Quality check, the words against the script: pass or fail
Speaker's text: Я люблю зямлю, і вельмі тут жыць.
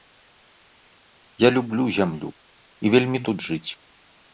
pass